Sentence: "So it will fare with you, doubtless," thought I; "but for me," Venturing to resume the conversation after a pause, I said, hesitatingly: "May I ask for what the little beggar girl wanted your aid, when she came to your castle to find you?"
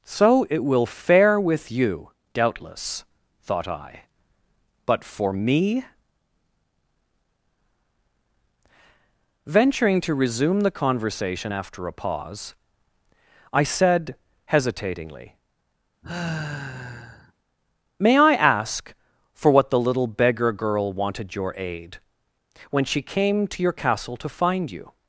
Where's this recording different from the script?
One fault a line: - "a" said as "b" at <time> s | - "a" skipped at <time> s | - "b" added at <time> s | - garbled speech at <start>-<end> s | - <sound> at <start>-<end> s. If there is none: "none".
- sigh at 16.0-17.3 s